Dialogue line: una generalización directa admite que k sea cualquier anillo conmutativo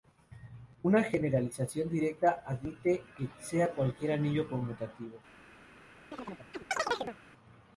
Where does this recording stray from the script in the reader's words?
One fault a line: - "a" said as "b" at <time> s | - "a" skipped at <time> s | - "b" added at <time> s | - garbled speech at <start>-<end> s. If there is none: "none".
- "k" skipped at 3.3 s